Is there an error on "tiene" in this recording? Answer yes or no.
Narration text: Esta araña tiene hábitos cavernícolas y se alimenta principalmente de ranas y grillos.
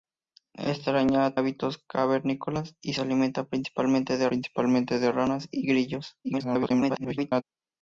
yes